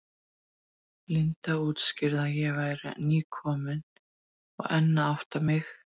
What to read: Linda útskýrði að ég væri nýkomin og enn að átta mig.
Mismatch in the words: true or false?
false